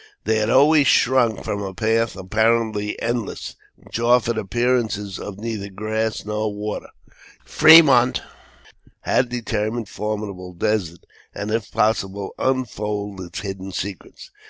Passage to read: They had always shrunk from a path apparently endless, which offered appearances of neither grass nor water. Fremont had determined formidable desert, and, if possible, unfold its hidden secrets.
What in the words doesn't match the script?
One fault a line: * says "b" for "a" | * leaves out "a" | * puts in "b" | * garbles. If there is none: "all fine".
all fine